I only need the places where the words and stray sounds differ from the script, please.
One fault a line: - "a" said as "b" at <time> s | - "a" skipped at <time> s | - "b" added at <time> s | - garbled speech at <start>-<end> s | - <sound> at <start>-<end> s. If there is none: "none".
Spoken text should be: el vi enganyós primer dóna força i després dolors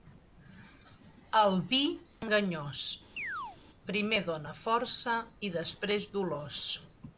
- chirp at 3.2-3.6 s